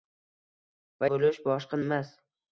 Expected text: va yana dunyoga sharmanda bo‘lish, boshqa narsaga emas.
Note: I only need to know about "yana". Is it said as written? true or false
false